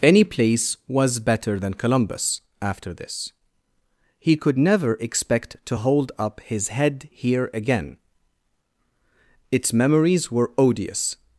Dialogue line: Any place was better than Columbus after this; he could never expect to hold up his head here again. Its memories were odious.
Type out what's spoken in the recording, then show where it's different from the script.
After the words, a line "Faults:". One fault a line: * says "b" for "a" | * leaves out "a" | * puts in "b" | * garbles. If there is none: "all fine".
Any place was better than Columbus after this; he could never expect to hold up his head here again. Its memories were odious.
Faults:
all fine